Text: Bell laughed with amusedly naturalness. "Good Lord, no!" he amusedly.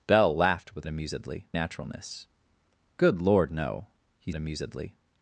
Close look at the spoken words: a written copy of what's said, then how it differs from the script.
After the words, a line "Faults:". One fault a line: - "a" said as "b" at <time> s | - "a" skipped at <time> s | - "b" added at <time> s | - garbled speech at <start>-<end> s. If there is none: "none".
Bell laughed with amusedly naturalness. "Good Lord, no!" he amusedly.
Faults:
none